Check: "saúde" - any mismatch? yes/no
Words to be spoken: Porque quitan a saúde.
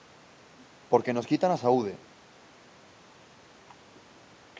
no